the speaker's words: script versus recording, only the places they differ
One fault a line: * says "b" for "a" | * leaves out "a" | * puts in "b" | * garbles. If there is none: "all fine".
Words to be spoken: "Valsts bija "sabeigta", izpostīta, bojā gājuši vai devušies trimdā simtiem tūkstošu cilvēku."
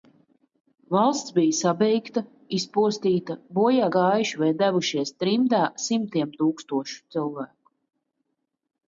all fine